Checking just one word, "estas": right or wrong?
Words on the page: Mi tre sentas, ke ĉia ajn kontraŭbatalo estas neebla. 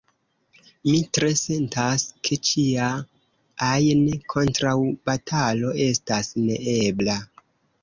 right